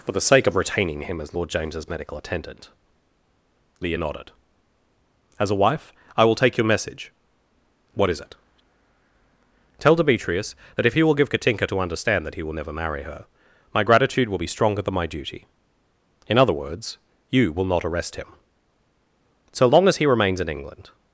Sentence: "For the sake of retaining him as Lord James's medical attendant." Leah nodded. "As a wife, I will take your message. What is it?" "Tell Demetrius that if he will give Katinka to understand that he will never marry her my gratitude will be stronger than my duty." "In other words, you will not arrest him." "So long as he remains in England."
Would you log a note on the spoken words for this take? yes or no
no